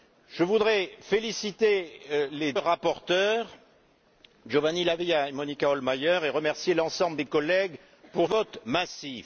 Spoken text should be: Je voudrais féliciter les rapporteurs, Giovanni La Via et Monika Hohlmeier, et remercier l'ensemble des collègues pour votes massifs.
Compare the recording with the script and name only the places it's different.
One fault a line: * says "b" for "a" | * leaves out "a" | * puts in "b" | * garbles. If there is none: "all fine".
all fine